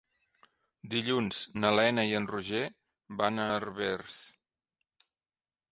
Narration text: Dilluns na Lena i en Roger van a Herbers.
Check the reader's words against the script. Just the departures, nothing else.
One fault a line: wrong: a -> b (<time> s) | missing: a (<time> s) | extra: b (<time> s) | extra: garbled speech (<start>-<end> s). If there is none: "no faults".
no faults